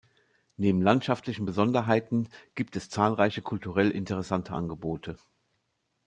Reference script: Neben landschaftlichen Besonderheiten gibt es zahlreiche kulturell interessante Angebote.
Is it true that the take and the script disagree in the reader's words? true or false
false